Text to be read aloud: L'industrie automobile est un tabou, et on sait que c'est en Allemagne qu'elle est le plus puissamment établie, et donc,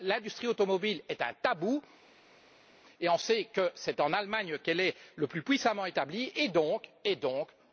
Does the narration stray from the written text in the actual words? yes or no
no